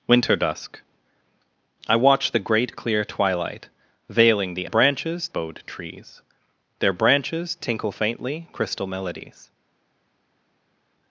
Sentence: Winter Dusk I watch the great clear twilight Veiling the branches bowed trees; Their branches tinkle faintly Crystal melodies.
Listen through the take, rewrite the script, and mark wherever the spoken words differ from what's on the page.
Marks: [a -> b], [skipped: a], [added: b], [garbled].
Winter Dusk I watch the great clear twilight Veiling the branches bowed trees; Their branches tinkle faintly Crystal melodies.